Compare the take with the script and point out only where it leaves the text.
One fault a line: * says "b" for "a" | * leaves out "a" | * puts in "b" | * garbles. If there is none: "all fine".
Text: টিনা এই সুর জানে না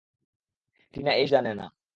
* leaves out "সুর"